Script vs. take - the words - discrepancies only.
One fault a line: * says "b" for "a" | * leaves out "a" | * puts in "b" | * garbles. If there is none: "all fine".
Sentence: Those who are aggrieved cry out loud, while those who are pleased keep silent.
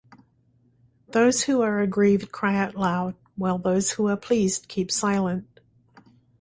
all fine